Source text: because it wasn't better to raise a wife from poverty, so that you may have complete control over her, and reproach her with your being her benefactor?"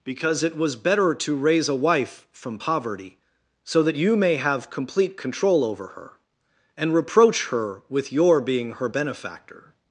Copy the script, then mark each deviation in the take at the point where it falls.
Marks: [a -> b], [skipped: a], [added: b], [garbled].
because it [wasn't -> was] better to raise a wife from poverty, so that you may have complete control over her, and reproach her with your being her benefactor?"